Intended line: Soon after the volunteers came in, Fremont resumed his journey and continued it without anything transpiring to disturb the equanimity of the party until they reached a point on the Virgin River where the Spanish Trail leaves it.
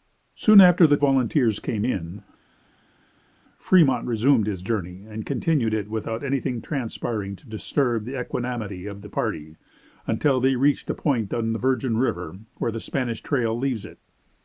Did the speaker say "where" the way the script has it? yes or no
yes